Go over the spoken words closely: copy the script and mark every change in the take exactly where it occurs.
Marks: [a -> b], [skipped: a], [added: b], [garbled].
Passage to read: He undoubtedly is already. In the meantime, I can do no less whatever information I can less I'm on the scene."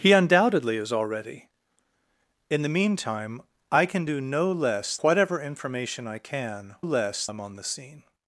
He undoubtedly is already. In the meantime, I can do no less whatever information I can less I'm on the scene."